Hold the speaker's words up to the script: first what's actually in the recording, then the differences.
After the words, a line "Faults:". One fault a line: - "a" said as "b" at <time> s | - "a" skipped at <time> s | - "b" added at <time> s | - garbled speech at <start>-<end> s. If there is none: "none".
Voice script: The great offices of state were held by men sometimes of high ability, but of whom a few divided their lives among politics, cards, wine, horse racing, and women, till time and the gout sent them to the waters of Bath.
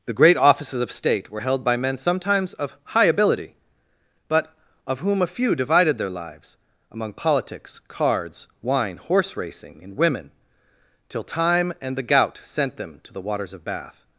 The great offices of state were held by men sometimes of high ability, but of whom a few divided their lives among politics, cards, wine, horse racing, and women, till time and the gout sent them to the waters of Bath.
Faults:
none